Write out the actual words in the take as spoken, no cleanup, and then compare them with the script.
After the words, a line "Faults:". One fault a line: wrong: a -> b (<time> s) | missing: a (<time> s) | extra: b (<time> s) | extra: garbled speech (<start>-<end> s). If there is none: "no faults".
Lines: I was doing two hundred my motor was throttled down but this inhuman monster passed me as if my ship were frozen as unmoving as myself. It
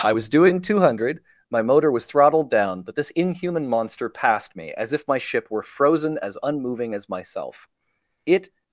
I was doing two hundred my motor was throttled down but this inhuman monster passed me as if my ship were frozen as unmoving as myself. It
Faults:
no faults